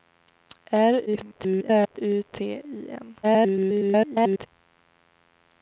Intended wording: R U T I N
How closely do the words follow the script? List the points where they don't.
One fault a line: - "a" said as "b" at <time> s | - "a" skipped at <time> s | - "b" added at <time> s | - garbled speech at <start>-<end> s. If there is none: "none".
- garbled speech at 1.1-2.0 s
- garbled speech at 3.2-4.5 s